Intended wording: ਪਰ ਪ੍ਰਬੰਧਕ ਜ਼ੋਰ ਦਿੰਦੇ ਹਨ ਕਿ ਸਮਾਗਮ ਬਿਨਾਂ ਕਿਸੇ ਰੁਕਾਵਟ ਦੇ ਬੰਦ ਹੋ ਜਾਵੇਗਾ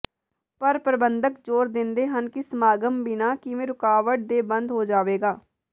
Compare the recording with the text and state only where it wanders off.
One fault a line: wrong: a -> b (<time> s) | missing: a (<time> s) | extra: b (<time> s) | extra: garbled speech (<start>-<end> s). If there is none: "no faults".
no faults